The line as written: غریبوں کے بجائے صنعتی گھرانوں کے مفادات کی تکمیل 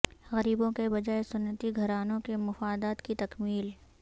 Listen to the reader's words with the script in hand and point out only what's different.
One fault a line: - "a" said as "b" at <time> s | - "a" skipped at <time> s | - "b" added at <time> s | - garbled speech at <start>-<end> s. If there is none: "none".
none